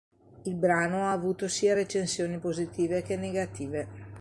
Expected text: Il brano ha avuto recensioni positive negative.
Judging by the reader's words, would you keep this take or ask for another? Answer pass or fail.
fail